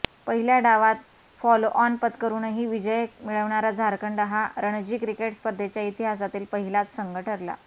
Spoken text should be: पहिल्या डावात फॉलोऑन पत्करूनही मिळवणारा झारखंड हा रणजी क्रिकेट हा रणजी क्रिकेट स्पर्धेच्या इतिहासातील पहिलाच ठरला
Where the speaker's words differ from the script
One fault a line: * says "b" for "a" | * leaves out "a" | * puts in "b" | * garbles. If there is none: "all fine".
* puts in "विजय"
* leaves out "हा रणजी क्रिकेट"
* puts in "संघ"